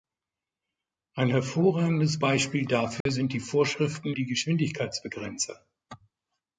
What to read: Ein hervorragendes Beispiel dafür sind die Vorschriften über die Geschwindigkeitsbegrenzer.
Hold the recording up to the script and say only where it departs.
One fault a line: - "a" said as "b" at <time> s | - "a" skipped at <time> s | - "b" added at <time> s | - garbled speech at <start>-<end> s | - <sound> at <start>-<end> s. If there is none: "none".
- dropout at 3.0-3.1 s
- "über" skipped at 4.1 s